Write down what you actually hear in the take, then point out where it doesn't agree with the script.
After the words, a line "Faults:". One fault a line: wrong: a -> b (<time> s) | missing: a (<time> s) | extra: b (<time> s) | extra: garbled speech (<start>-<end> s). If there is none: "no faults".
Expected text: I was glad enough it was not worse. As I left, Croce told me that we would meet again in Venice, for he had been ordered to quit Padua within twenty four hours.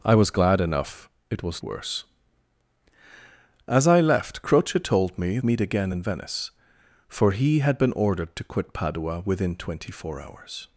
I was glad enough it was worse. As I left, Croce told me meet again in Venice, for he had been ordered to quit Padua within twenty four hours.
Faults:
missing: not (1.6 s)
missing: that we would (5.4 s)